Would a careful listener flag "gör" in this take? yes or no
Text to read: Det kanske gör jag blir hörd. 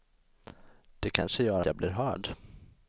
no